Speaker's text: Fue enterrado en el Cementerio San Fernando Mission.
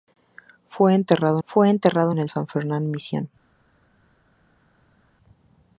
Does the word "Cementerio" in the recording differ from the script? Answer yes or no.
yes